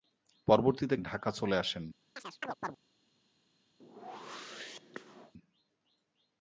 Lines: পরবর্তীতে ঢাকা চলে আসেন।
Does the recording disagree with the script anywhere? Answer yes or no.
no